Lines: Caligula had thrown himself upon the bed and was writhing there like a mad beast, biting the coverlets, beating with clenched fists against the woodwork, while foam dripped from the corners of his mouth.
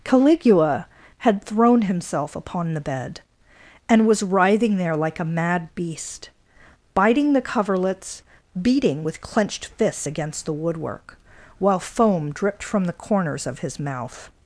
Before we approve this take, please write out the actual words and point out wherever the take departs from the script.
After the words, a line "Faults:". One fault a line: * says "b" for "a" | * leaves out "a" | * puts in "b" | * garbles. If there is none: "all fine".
Caligula had thrown himself upon the bed and was writhing there like a mad beast, biting the coverlets, beating with clenched fists against the woodwork, while foam dripped from the corners of his mouth.
Faults:
all fine